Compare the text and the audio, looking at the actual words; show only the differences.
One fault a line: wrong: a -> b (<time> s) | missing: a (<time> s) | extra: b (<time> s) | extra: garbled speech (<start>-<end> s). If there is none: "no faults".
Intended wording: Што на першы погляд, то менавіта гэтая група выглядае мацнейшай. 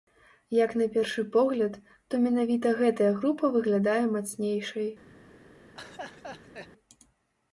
wrong: Што -> Як (0.6 s)